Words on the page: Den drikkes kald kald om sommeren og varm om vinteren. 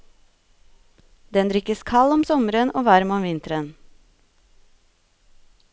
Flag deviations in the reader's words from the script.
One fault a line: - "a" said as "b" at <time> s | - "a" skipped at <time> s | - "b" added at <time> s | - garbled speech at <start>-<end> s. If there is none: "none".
- "kald" skipped at 2.1 s